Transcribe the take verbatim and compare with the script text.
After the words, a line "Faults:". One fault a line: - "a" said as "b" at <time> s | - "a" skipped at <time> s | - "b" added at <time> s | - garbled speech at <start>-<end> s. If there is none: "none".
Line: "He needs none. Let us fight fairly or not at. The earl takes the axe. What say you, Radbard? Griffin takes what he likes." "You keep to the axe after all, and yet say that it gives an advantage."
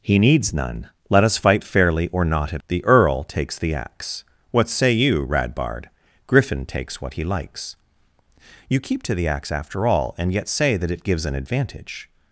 "He needs none. Let us fight fairly or not at. The earl takes the axe. What say you, Radbard? Griffin takes what he likes." "You keep to the axe after all, and yet say that it gives an advantage."
Faults:
none